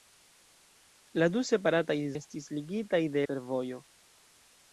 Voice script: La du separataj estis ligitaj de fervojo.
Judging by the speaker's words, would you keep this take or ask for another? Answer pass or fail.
pass